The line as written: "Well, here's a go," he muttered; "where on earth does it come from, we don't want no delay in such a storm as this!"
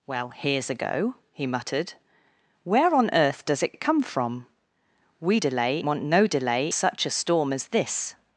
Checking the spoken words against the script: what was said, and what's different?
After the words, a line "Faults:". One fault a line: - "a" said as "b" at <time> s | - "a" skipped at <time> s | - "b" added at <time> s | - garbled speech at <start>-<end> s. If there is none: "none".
"Well, here's a go," he muttered; "where on earth does it it come from, we delay want no delay such a storm as this!"
Faults:
- "it" added at 3.7 s
- "don't" said as "delay" at 5.4 s
- "in" skipped at 6.7 s